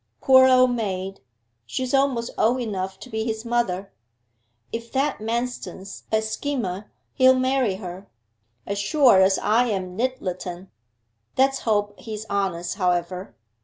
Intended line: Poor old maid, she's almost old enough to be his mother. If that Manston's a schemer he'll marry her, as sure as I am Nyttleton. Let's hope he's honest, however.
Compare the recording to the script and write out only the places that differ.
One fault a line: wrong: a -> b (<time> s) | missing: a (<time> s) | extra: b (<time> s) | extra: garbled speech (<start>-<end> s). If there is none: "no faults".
no faults